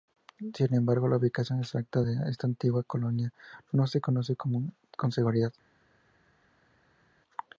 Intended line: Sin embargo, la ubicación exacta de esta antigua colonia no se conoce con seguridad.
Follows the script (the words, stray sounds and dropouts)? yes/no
yes